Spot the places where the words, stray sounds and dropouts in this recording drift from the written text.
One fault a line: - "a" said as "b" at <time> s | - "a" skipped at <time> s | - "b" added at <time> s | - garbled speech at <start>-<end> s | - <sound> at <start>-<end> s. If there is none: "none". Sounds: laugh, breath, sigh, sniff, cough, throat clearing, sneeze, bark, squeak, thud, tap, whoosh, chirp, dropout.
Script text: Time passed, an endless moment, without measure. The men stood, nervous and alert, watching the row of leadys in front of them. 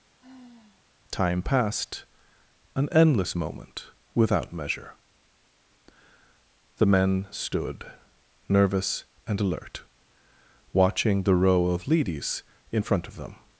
- sigh at 0.2-0.9 s